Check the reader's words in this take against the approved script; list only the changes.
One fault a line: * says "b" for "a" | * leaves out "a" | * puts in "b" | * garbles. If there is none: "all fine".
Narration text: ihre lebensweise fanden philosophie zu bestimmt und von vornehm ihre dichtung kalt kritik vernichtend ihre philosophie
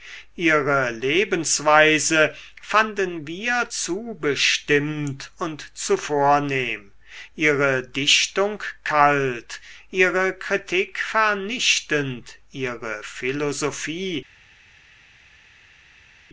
* says "wir" for "philosophie"
* says "zu" for "von"
* puts in "ihre"